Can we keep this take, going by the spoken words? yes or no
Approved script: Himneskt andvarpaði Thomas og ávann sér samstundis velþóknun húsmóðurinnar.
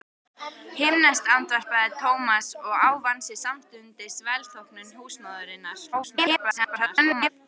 no